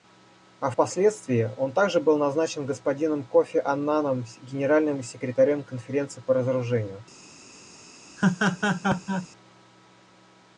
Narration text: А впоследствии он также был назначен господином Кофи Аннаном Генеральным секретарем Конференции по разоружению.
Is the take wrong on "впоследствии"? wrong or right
right